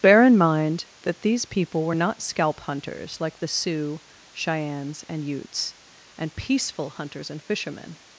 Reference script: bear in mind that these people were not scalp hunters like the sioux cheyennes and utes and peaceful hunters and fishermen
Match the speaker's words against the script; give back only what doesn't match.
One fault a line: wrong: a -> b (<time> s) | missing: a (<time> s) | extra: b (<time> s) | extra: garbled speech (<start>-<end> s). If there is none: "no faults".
no faults